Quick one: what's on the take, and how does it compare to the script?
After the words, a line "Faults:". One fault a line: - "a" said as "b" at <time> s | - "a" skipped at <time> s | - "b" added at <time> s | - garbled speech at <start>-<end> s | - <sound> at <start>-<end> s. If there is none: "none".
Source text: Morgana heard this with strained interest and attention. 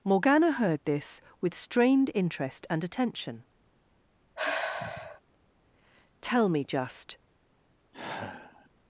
Morgana heard this with strained interest and attention. "Tell me just
Faults:
- sigh at 4.4-5.2 s
- "Tell me just" added at 6.2 s
- sigh at 7.9-8.7 s